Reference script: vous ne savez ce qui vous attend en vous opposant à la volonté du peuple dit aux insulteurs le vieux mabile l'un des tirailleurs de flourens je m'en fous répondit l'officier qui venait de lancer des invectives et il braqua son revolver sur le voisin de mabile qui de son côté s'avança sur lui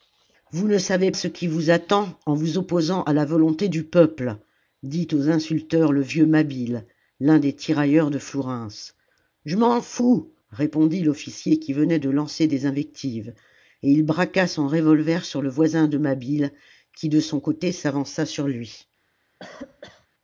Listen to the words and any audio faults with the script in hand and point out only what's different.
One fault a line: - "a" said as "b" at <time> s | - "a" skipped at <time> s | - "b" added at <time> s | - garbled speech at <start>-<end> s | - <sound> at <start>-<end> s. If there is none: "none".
- cough at 19.4-20.1 s